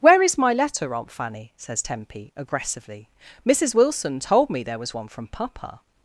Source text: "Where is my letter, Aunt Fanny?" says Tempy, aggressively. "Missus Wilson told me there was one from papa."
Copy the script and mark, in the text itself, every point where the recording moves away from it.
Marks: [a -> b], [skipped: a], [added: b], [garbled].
"Where is my letter, Aunt Fanny?" says Tempy, aggressively. "Missus Wilson told me there was one from papa."